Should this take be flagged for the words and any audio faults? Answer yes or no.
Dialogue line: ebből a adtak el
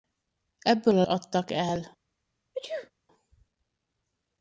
yes